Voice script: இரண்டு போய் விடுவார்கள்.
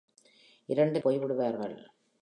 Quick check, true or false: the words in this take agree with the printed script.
true